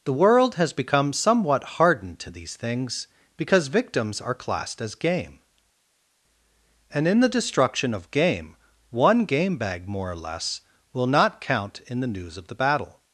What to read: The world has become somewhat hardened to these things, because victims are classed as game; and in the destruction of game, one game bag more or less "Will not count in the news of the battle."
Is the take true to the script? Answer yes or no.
yes